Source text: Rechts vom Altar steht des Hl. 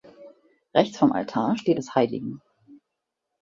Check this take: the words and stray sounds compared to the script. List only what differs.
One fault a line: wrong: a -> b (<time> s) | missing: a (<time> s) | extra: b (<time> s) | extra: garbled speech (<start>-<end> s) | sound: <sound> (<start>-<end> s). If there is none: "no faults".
no faults